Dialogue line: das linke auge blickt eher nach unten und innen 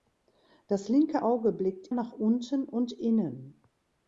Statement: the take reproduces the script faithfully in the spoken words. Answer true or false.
false